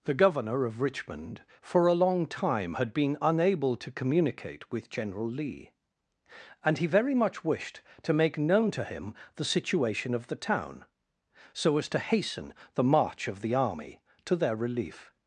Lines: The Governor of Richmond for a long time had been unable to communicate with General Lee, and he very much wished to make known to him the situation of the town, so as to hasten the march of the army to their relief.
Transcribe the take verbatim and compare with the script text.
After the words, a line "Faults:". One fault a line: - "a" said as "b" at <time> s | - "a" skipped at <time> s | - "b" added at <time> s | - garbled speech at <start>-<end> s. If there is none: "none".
The Governor of Richmond for a long time had been unable to communicate with General Lee, and he very much wished to make known to him the situation of the town, so as to hasten the march of the army to their relief.
Faults:
none